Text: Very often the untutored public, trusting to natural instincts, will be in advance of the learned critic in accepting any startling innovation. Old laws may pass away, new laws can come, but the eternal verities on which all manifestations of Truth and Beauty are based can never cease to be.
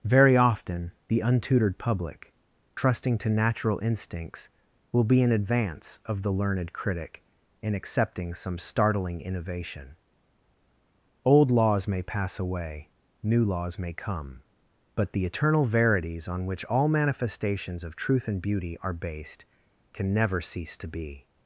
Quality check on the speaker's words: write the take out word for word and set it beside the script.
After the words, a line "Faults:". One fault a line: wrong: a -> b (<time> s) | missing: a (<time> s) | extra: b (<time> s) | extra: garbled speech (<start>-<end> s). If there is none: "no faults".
Very often the untutored public, trusting to natural instincts, will be in advance of the learned critic in accepting some startling innovation. Old laws may pass away, new laws may come, but the eternal verities on which all manifestations of Truth and Beauty are based can never cease to be.
Faults:
wrong: any -> some (8.3 s)
wrong: can -> may (13.8 s)